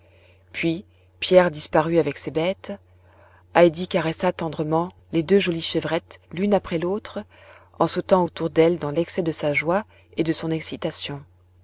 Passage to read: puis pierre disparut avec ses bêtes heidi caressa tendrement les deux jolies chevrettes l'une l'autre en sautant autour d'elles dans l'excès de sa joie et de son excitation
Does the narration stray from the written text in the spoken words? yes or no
yes